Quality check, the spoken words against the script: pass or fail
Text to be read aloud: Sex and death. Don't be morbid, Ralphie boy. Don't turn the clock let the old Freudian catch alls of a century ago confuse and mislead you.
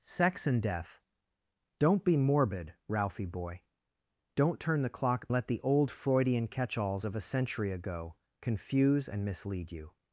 pass